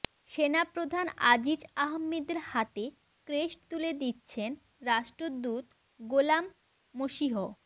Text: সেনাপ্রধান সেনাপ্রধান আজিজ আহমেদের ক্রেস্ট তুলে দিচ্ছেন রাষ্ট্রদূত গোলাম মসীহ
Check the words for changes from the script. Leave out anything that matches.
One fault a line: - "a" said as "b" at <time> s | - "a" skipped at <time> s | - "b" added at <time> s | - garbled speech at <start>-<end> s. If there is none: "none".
- "সেনাপ্রধান" skipped at 1.1 s
- "হাতে" added at 2.5 s